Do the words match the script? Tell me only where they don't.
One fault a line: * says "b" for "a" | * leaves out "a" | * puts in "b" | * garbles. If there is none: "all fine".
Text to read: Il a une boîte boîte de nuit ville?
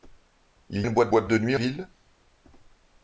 all fine